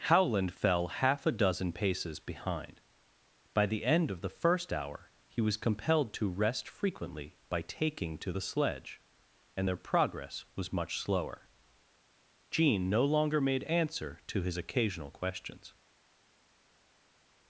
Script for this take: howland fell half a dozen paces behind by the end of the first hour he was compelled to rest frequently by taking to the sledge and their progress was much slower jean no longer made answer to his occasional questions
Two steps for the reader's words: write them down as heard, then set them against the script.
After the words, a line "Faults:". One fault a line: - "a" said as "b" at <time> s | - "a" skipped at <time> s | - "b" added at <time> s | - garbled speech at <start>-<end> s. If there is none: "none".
howland fell half a dozen paces behind by the end of the first hour he was compelled to rest frequently by taking to the sledge and their progress was much slower jean no longer made answer to his occasional questions
Faults:
none